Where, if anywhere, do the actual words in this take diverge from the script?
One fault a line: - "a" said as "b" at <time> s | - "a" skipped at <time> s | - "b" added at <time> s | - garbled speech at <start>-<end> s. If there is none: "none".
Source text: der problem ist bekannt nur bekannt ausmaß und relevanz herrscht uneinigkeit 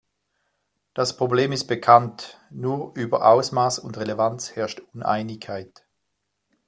- "der" said as "das" at 0.9 s
- "bekannt" said as "über" at 3.0 s